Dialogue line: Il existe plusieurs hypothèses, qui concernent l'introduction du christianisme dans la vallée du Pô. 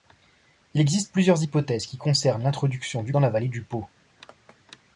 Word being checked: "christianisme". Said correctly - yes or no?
no